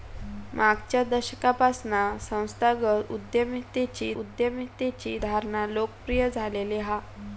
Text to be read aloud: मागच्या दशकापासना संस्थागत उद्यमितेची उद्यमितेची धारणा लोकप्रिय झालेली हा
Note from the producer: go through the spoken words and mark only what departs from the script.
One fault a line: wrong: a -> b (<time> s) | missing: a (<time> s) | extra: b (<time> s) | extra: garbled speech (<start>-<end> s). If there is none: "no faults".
no faults